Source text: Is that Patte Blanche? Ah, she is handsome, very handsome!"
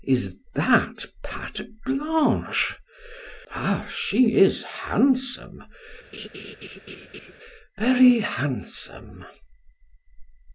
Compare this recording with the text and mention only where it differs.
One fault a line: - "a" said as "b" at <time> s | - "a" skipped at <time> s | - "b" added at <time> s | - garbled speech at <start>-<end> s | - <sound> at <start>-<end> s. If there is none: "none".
- laugh at 6.1-7.3 s